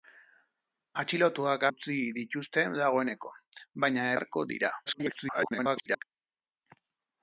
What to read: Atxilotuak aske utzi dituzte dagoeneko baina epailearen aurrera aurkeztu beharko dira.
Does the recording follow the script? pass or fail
fail